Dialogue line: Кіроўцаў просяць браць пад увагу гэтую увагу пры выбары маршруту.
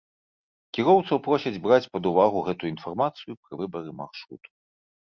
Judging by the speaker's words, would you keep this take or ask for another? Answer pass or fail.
fail